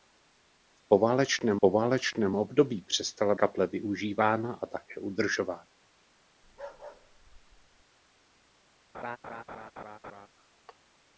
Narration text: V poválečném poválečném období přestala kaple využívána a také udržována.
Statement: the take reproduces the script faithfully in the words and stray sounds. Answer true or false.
false